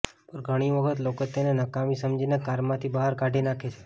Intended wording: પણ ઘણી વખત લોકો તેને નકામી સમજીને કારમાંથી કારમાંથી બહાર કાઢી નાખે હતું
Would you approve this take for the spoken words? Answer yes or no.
no